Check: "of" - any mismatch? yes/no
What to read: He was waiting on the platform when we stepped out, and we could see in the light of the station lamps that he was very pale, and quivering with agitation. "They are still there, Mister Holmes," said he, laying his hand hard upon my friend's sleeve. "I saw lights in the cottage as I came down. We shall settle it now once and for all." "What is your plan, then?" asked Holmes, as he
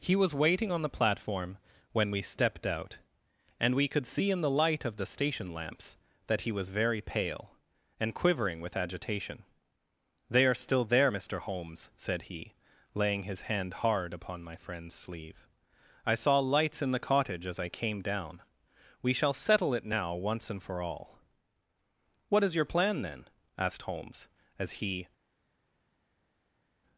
no